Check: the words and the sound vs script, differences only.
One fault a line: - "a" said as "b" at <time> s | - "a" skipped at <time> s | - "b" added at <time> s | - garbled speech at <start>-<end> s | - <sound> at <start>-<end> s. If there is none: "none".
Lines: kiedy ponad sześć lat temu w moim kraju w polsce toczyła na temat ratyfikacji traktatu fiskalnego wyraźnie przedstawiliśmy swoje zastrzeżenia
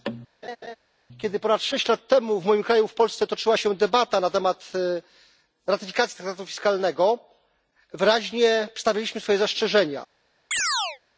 - laugh at 0.4-0.8 s
- "się debata" added at 3.6 s
- chirp at 10.5-11.0 s